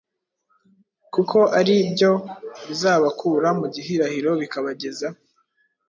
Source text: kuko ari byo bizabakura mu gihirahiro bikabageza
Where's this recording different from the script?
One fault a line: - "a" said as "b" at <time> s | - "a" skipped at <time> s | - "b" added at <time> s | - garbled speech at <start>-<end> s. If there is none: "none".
none